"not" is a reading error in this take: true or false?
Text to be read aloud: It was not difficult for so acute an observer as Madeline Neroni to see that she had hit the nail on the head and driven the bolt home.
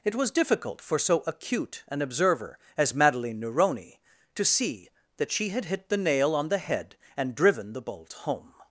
true